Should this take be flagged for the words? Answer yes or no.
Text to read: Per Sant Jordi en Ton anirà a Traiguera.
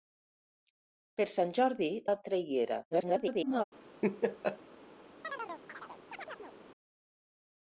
yes